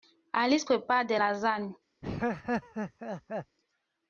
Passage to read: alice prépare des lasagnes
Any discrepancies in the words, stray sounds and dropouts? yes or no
yes